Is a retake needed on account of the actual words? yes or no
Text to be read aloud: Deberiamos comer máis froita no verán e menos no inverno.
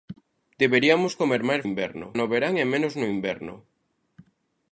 yes